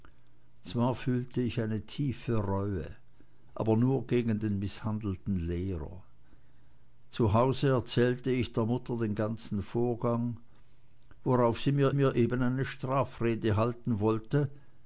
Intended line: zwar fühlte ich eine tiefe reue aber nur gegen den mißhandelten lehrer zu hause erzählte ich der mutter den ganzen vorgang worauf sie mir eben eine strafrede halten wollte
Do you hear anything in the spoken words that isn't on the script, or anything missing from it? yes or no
yes